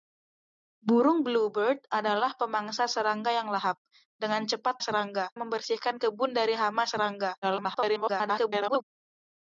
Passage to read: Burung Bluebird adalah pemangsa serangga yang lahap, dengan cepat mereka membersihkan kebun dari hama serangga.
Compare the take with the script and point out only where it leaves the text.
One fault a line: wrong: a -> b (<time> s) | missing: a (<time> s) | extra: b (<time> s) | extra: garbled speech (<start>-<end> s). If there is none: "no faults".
wrong: mereka -> serangga (4.8 s)
extra: garbled speech (7.4-8.8 s)